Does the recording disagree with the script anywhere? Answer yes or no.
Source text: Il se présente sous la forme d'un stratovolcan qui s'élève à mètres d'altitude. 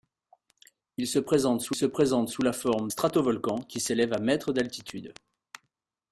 yes